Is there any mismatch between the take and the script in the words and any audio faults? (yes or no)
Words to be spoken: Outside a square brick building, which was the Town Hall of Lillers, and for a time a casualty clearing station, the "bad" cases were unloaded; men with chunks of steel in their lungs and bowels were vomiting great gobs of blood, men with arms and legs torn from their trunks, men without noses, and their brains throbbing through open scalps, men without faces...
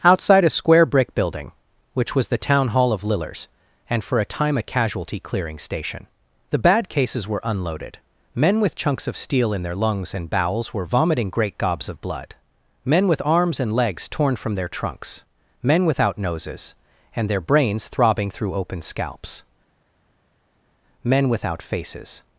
no